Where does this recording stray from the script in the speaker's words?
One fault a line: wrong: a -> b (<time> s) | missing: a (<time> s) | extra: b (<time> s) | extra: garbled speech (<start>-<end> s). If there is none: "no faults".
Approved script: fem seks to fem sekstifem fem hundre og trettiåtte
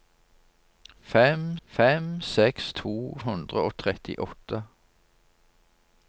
extra: fem (1.6 s)
missing: fem sekstifem fem (3.2 s)